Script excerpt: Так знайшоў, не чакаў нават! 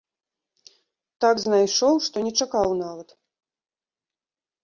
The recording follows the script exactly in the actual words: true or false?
false